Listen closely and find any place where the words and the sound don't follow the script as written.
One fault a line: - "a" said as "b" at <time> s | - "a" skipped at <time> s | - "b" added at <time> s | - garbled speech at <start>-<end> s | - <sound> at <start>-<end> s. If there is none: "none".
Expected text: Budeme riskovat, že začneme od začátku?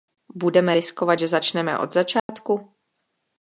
- dropout at 2.2-2.3 s